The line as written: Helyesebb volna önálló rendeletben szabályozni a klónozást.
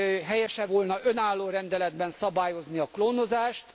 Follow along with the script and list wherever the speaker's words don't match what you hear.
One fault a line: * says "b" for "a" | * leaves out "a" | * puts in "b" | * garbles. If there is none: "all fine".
all fine